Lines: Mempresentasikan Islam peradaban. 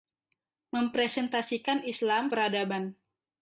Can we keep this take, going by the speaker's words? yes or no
yes